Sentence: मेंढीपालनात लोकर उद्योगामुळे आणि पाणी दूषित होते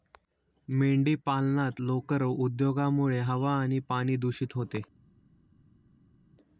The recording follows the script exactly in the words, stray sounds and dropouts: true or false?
false